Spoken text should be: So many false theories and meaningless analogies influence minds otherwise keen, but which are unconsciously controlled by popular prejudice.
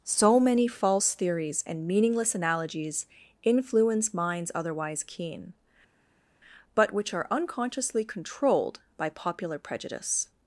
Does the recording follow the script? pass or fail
pass